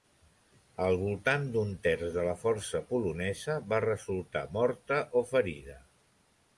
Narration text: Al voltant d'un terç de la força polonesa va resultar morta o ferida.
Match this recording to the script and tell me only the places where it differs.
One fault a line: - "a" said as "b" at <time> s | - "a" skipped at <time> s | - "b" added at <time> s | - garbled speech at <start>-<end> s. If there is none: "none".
none